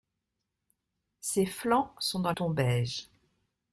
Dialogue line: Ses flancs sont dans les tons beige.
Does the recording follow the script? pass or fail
fail